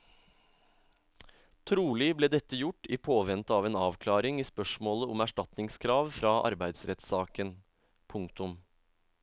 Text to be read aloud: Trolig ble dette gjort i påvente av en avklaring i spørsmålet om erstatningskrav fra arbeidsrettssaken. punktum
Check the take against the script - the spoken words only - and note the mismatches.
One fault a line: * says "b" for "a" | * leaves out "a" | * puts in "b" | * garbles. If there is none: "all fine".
all fine